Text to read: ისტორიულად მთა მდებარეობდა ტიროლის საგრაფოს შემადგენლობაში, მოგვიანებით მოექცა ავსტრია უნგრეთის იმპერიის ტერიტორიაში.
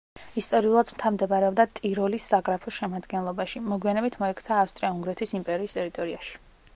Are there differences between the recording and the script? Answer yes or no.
no